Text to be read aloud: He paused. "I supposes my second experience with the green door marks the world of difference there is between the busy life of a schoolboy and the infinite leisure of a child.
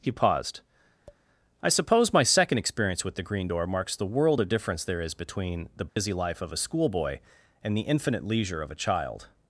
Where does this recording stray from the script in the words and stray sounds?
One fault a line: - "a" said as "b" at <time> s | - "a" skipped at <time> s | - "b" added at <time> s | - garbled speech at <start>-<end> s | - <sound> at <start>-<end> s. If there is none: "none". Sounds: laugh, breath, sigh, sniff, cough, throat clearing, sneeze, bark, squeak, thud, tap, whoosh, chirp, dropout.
- tap at 1.1-1.2 s
- "supposes" said as "suppose" at 1.7 s
- dropout at 5.9-6.0 s